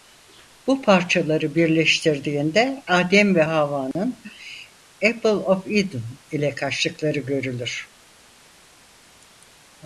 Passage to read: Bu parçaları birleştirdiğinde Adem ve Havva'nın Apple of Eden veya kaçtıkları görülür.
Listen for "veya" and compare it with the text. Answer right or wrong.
wrong